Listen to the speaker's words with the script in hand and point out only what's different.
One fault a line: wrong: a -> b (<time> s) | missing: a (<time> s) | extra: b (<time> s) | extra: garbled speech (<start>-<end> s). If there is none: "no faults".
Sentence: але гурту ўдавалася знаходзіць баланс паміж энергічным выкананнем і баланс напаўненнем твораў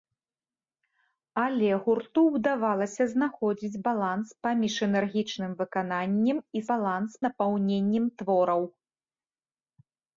no faults